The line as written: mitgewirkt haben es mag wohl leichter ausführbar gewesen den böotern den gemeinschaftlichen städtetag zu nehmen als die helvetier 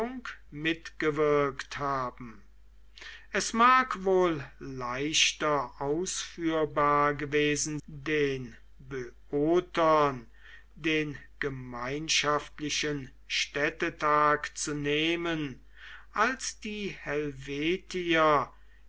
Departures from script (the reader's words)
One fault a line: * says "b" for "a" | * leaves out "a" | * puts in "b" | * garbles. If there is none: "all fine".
all fine